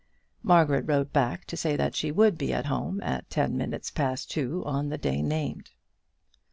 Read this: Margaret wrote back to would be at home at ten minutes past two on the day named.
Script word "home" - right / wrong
right